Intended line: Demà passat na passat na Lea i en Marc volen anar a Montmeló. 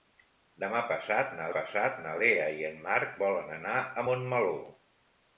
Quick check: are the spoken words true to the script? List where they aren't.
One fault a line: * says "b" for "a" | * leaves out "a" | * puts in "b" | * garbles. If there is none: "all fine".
all fine